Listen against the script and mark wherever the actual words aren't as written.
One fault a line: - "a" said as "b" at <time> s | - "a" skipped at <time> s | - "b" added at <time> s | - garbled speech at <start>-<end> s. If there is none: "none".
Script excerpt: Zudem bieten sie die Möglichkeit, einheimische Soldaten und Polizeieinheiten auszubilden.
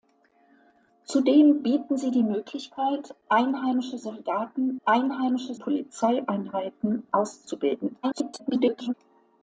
- "und" said as "einheimische" at 4.9 s
- garbled speech at 8.0-8.9 s